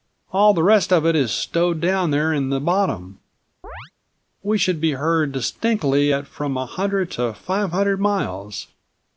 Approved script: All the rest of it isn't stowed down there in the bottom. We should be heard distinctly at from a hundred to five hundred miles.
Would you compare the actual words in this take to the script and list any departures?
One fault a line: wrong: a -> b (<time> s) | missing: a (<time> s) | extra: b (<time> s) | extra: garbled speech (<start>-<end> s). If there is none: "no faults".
wrong: isn't -> is (1.1 s)